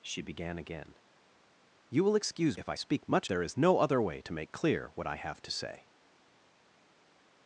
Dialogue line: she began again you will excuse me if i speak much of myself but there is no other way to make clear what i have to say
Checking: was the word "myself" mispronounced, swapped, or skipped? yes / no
yes